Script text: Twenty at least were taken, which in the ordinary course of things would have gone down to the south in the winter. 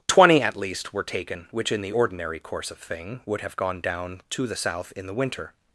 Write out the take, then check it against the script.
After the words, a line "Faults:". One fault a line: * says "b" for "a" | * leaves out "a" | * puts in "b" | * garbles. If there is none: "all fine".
Twenty at least were taken, which in the ordinary course of thing would have gone down to the south in the winter.
Faults:
* says "thing" for "things"